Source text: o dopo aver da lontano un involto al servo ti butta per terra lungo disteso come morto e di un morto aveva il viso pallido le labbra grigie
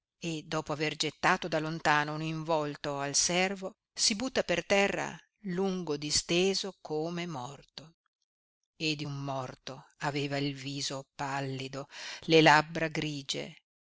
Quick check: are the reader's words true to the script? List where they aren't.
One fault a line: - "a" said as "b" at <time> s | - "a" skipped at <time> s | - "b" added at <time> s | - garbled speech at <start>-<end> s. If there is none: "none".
- "o" said as "e" at 0.2 s
- "gettato" added at 0.9 s
- "ti" said as "si" at 3.9 s